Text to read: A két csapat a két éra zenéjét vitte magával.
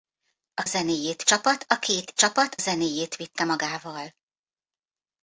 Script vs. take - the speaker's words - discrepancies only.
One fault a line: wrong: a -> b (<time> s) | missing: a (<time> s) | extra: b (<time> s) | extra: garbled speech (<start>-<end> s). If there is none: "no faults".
wrong: két -> zenéjét (0.6 s)
wrong: éra -> csapat (2.2 s)